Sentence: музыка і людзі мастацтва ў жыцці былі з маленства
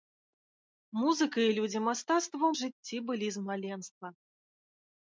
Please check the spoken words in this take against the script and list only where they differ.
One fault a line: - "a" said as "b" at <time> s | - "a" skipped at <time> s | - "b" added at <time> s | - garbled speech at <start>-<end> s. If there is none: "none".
none